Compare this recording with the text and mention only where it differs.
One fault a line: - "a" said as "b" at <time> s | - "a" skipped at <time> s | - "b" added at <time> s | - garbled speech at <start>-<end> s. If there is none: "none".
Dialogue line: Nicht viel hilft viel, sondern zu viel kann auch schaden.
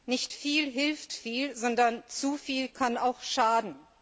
none